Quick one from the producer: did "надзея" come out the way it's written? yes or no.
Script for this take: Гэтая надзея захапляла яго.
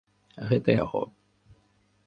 no